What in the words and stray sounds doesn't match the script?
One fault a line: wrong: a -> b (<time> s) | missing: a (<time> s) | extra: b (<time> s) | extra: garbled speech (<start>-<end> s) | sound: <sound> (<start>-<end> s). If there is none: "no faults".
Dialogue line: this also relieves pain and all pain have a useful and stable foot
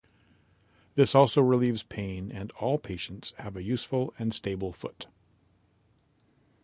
wrong: pain -> patients (2.8 s)